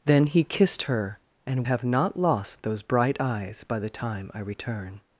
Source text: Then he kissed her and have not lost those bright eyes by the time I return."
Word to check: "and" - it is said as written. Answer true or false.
true